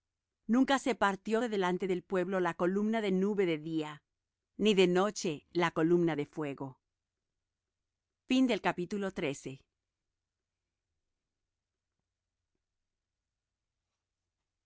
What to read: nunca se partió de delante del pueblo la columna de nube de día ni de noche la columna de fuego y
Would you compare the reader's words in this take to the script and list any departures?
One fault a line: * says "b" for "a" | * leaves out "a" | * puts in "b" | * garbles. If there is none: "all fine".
all fine